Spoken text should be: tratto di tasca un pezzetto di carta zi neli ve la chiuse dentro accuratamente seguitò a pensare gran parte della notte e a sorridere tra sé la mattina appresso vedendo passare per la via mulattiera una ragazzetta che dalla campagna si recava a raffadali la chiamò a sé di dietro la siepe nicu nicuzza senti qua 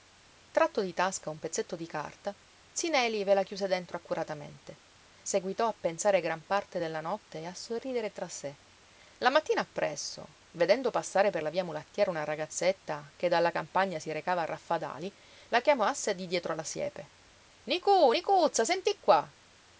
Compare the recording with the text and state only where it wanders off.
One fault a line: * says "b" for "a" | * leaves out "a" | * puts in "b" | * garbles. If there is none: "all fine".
all fine